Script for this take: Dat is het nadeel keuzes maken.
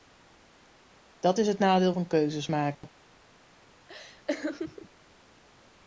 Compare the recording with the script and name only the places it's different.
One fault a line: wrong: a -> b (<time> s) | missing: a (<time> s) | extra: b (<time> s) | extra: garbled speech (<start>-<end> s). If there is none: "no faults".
extra: van (1.9 s)